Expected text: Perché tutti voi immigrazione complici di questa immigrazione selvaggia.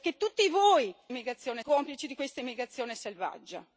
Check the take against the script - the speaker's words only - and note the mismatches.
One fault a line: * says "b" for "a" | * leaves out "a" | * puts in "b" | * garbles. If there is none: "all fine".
all fine